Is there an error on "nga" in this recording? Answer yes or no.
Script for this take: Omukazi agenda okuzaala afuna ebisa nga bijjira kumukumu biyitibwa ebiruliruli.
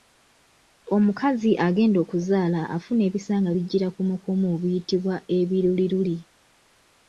no